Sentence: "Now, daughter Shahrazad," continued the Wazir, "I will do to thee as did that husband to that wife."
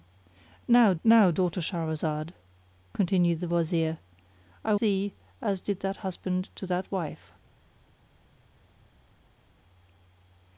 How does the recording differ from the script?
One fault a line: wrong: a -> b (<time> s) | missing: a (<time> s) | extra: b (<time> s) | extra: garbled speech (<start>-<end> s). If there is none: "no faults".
extra: now (1.0 s)
missing: will do to (4.8 s)